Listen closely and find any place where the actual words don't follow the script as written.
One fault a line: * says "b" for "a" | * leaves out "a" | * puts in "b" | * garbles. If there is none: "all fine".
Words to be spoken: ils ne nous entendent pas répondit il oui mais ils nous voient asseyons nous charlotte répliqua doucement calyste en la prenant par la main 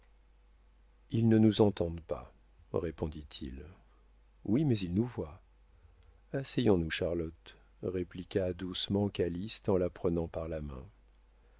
all fine